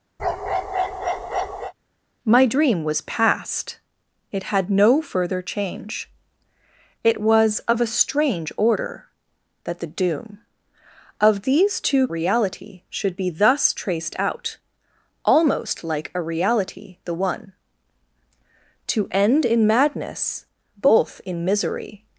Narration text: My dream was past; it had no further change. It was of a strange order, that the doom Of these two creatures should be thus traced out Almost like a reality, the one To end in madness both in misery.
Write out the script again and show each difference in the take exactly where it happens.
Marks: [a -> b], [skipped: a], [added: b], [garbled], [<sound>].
[bark] My dream was past; it had no further change. It was of a strange order, that the doom Of these two [creatures -> reality] should be thus traced out Almost like a reality, the one To end in madness both in misery.